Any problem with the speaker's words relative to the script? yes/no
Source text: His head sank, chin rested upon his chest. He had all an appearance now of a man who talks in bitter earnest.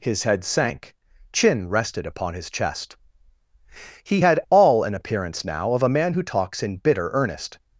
no